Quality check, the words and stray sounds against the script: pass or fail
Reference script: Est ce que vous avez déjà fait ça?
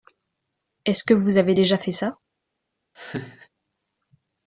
fail